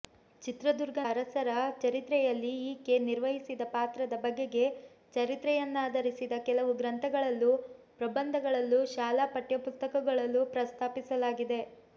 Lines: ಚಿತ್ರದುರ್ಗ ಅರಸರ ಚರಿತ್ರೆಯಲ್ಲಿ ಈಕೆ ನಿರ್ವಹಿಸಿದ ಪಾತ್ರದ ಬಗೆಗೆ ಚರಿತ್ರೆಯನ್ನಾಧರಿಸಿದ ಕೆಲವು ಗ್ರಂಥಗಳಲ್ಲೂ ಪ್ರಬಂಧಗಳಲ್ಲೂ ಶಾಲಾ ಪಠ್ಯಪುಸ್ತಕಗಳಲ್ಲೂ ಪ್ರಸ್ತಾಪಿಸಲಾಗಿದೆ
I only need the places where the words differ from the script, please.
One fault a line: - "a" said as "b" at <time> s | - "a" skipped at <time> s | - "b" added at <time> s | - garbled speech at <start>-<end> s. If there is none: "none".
none